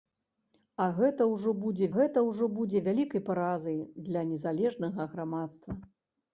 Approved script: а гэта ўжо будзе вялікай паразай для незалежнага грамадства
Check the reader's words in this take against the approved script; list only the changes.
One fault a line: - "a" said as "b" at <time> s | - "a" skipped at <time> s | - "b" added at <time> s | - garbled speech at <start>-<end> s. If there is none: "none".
- "гэта ўжо будзе" added at 2.0 s